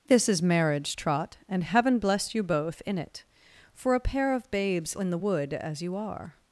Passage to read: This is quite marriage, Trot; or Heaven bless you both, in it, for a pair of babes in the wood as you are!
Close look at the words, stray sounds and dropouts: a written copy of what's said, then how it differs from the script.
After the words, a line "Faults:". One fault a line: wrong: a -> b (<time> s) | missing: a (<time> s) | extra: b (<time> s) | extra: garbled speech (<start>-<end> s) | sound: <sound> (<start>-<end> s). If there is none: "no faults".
This is marriage, Trot; and Heaven bless you both, in it, for a pair of babes in the wood as you are!
Faults:
missing: quite (0.4 s)
wrong: or -> and (1.5 s)